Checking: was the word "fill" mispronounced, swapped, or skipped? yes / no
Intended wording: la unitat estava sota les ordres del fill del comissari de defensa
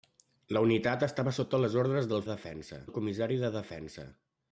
yes